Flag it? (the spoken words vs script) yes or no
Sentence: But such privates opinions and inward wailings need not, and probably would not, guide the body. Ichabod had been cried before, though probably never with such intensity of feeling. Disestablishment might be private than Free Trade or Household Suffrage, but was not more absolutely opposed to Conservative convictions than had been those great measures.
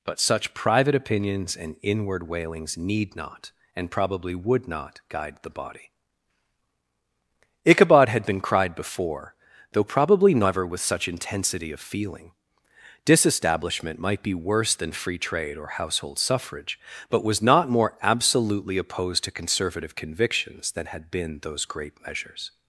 yes